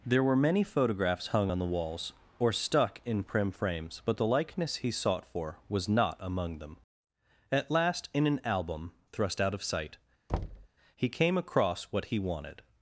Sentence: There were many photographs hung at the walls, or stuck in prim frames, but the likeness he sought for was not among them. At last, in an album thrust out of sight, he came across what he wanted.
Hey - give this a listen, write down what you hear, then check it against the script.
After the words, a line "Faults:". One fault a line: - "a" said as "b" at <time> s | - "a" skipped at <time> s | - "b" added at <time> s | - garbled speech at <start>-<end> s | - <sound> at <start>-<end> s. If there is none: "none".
There were many photographs hung on the walls, or stuck in prim frames, but the likeness he sought for was not among them. At last, in an album thrust out of sight, he came across what he wanted.
Faults:
- "at" said as "on" at 1.5 s
- thud at 10.3-10.7 s